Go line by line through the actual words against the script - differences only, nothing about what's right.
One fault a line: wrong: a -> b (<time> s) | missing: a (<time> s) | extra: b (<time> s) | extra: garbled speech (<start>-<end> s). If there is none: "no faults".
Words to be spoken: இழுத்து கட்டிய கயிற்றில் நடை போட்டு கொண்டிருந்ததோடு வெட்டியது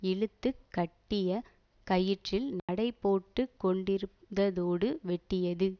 no faults